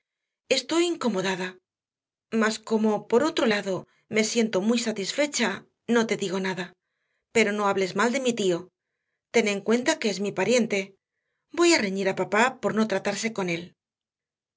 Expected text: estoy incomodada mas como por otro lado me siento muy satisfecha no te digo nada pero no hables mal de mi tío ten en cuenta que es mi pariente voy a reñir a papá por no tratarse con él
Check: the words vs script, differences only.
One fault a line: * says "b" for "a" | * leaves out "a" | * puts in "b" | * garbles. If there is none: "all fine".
all fine